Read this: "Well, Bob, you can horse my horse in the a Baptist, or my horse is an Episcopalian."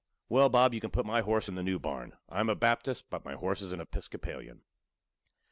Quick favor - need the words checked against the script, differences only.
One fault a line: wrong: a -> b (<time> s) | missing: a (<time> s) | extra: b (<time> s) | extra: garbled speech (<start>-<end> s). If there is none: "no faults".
wrong: horse -> put (0.9 s)
extra: new barn I'm (1.6 s)
wrong: or -> but (3.1 s)